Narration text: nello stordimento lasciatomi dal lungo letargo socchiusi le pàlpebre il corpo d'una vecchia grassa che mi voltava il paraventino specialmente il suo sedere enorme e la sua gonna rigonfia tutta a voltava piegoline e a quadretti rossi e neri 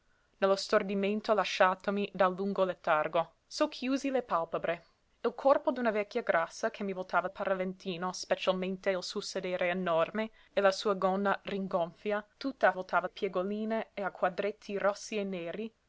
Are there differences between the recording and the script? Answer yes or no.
no